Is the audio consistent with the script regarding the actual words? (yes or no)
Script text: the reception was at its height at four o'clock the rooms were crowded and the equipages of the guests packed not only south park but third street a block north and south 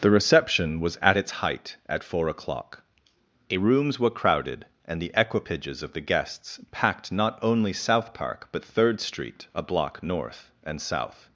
yes